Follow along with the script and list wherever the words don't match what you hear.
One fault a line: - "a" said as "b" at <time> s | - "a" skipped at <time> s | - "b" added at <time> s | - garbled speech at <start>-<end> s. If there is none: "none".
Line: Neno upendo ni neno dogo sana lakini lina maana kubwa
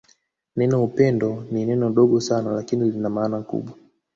none